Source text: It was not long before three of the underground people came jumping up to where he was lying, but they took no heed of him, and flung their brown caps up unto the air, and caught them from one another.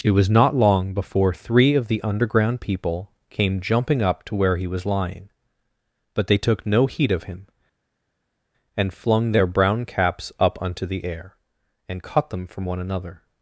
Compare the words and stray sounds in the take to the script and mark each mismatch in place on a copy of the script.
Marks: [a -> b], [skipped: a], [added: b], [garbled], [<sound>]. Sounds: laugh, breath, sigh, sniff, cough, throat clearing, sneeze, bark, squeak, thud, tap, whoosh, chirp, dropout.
It was not long before three of the underground people came jumping up to where he was lying, but they took no heed of him, and flung their brown caps up unto the air, and caught them from one another.